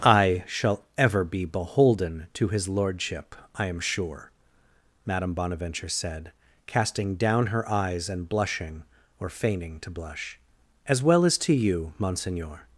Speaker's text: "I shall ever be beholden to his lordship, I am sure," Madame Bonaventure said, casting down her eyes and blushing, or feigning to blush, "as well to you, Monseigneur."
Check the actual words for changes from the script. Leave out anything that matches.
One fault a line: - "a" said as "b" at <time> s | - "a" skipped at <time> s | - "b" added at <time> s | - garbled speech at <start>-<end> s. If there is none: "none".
- "as" added at 11.2 s